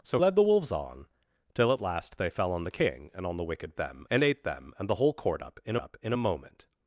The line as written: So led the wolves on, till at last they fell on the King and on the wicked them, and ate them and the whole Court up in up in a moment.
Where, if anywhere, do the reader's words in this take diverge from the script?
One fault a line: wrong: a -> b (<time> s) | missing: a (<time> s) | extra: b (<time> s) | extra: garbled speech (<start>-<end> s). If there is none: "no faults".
no faults